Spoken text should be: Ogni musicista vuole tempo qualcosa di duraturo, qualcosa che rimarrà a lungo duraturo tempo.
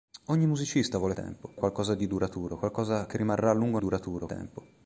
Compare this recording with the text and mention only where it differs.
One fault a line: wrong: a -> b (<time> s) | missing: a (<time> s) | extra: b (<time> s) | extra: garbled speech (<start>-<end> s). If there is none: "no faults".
no faults